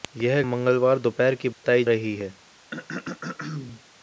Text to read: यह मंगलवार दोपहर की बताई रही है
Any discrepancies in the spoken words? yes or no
no